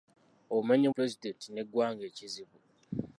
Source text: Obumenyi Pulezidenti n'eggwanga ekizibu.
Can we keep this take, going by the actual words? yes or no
yes